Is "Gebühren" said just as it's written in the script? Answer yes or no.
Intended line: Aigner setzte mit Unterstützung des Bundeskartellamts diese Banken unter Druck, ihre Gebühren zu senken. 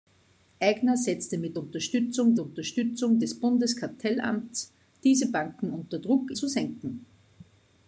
no